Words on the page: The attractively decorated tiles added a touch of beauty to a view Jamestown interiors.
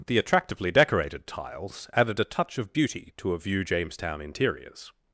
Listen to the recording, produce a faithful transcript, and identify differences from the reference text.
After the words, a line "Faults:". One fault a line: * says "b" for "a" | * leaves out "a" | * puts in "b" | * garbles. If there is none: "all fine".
The attractively decorated tiles added a touch of beauty to a view Jamestown interiors.
Faults:
all fine